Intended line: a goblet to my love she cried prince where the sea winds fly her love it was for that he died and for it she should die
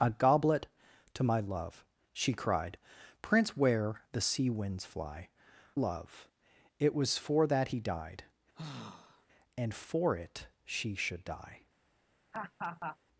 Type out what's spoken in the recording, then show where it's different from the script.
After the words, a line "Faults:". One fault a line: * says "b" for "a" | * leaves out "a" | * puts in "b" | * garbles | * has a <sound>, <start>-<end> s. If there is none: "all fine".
a goblet to my love she cried prince where the sea winds fly love it was for that he died and for it she should die
Faults:
* leaves out "her"
* has a sigh, 8.5-9.3 s
* has a laugh, 12.3-13.0 s